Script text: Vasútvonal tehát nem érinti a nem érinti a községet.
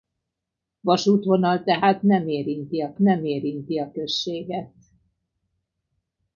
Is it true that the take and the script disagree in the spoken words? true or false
false